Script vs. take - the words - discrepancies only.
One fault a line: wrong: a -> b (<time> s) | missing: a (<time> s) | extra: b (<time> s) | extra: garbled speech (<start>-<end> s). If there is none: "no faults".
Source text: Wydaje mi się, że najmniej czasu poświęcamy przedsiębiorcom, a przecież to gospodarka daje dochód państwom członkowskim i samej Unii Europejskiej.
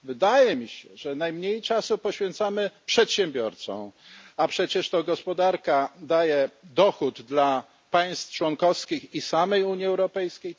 no faults